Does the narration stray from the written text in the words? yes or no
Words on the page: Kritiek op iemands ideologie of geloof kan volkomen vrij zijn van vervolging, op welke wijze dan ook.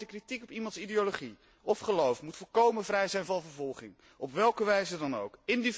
yes